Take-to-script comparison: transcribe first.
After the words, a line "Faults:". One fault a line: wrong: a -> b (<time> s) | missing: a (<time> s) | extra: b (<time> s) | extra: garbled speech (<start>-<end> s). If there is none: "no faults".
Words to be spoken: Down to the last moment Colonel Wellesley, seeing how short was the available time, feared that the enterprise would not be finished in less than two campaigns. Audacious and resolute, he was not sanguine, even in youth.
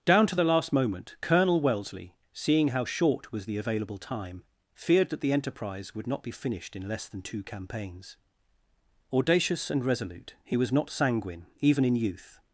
Down to the last moment Colonel Wellesley, seeing how short was the available time, feared that the enterprise would not be finished in less than two campaigns. Audacious and resolute, he was not sanguine, even in youth.
Faults:
no faults